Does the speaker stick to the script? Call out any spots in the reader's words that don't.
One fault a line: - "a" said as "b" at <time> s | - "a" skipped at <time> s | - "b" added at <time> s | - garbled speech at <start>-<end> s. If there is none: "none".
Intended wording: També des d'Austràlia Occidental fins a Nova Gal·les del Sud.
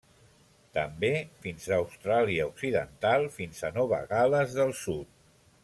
- "des" said as "fins" at 1.4 s